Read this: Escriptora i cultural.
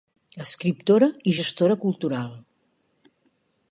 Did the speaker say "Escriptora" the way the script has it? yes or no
yes